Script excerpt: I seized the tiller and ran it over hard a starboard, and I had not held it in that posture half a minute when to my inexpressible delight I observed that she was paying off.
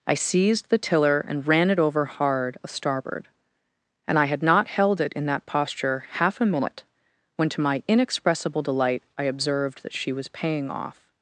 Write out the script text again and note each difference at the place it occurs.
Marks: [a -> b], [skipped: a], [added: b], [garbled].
I seized the tiller and ran it over hard a starboard, and I had not held it in that posture half a minute when to my inexpressible delight I observed that she was paying off.